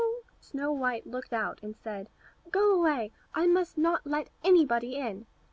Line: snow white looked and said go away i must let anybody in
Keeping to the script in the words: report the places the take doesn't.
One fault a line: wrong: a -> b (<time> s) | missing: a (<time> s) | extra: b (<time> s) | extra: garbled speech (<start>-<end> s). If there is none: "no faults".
extra: out (1.3 s)
extra: not (3.8 s)